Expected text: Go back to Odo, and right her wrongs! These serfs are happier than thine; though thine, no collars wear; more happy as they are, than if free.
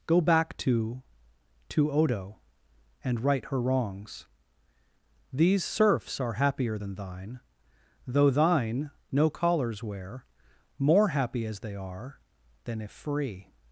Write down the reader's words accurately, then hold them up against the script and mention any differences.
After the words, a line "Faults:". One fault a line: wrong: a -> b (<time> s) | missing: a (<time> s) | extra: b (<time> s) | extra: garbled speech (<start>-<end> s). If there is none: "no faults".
Go back to to Odo, and right her wrongs! These serfs are happier than thine; though thine, no collars wear; more happy as they are, than if free.
Faults:
extra: to (1.7 s)